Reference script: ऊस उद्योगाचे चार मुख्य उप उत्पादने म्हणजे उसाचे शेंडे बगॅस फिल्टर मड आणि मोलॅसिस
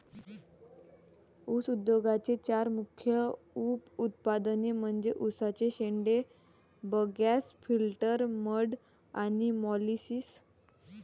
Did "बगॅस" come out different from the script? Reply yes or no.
no